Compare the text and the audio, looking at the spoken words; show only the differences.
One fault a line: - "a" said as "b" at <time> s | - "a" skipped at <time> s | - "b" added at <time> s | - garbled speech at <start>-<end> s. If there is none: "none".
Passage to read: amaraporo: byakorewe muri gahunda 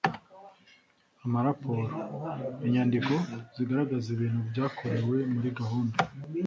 - "inyandiko zigaragaza ibintu" added at 2.6 s